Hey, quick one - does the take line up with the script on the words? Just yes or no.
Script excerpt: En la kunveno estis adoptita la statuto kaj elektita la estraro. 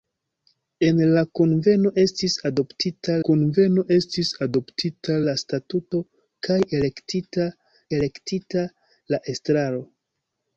no